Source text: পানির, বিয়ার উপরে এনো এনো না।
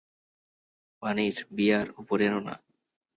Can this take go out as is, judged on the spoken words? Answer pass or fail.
fail